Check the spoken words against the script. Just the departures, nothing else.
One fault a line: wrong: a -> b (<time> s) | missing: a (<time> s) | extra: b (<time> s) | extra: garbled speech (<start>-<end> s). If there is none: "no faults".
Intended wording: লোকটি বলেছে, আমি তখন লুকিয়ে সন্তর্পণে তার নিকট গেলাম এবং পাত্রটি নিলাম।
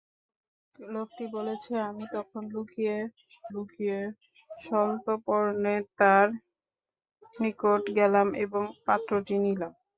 extra: লুকিয়ে (3.5 s)